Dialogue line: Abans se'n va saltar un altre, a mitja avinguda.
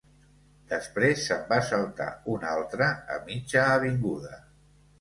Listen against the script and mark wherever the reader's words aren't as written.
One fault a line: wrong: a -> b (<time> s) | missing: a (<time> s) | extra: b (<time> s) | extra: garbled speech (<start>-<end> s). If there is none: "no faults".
wrong: Abans -> Després (0.7 s)